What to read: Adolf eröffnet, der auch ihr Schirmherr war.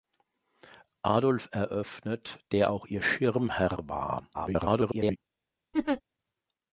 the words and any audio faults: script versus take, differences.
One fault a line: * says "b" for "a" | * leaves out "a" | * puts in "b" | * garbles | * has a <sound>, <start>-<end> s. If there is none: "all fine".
* garbles
* has a laugh, 5.7-6.0 s